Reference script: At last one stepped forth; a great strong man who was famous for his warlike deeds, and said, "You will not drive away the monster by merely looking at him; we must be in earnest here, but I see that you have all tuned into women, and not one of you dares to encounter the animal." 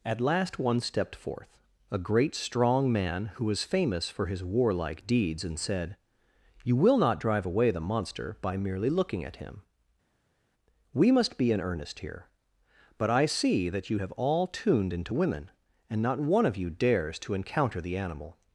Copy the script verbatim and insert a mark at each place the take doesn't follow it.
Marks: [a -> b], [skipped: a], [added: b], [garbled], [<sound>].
At last one stepped forth; a great strong man who was famous for his warlike deeds, and said, "You will not drive away the monster by merely looking at him; we must be in earnest here, but I see that you have all tuned into women, and not one of you dares to encounter the animal."